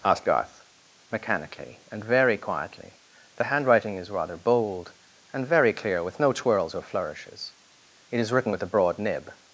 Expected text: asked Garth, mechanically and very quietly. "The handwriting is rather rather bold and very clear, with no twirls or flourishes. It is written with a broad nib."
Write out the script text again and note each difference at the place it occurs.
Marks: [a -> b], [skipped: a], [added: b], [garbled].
asked Garth, mechanically and very quietly. "The handwriting is rather [skipped: rather] bold and very clear, with no twirls or flourishes. It is written with a broad nib."